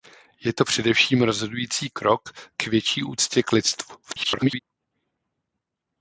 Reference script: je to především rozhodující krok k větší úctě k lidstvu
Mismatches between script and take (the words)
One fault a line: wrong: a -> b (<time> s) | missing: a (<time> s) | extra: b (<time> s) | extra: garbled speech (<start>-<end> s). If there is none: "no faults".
extra: garbled speech (4.0-4.6 s)